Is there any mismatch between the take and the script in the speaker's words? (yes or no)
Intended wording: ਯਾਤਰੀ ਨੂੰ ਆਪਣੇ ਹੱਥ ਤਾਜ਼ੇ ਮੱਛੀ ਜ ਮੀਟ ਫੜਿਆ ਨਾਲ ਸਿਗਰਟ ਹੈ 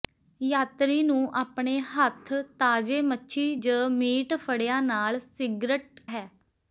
no